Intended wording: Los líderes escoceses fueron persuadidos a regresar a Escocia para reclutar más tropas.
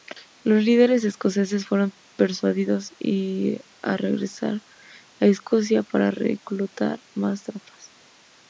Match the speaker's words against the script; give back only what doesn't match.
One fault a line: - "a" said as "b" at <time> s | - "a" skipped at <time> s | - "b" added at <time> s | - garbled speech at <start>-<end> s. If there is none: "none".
none